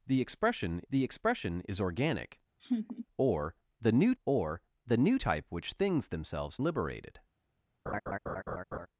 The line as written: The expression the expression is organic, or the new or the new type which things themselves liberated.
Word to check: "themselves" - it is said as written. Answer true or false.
true